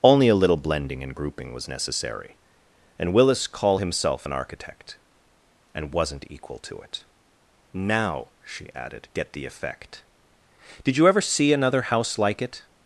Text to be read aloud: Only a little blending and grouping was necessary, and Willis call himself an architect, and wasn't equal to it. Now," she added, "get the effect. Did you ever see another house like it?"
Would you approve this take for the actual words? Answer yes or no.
yes